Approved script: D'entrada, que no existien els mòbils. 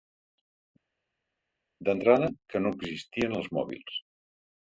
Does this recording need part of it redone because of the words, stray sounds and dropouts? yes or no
no